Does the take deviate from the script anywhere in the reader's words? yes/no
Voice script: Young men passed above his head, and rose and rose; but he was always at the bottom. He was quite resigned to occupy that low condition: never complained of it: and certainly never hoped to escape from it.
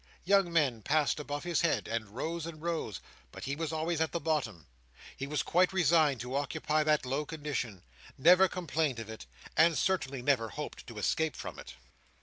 no